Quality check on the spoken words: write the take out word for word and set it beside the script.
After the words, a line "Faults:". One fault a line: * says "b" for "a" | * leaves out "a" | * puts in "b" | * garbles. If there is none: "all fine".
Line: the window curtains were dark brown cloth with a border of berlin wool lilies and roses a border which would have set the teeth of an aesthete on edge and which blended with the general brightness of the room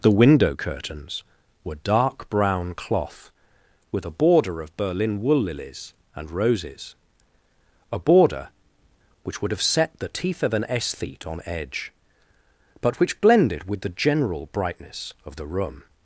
the window curtains were dark brown cloth with a border of berlin wool lilies and roses a border which would have set the teeth of an aesthete on edge but which blended with the general brightness of the room
Faults:
* says "but" for "and"